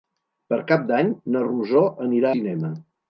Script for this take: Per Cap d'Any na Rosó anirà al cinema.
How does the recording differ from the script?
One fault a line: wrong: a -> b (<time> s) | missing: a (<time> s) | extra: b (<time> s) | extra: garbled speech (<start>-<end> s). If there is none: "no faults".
missing: al (2.3 s)